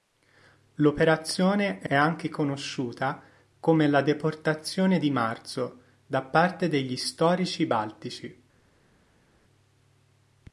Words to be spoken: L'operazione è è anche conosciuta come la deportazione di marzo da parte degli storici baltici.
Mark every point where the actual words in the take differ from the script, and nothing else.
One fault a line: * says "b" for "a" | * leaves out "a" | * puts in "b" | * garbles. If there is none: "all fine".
all fine